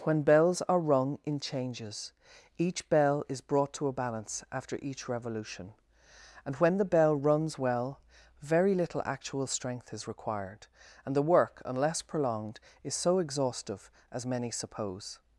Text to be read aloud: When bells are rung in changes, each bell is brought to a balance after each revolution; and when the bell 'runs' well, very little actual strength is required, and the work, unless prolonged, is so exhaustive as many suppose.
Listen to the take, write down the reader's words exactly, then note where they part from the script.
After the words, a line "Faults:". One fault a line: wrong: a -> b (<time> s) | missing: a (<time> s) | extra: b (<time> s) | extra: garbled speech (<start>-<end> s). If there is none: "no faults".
When bells are rung in changes, each bell is brought to a balance after each revolution; and when the bell 'runs' well, very little actual strength is required, and the work, unless prolonged, is so exhaustive as many suppose.
Faults:
no faults